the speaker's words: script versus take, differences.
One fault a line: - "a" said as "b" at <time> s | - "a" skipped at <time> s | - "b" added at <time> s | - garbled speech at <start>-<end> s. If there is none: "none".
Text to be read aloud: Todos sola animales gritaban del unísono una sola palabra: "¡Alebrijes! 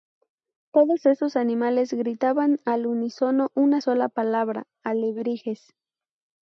- "sola" said as "esos" at 1.1 s
- "del" said as "al" at 2.6 s